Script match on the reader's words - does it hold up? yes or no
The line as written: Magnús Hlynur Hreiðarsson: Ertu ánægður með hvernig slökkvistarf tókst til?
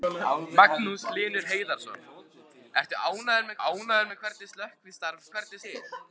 no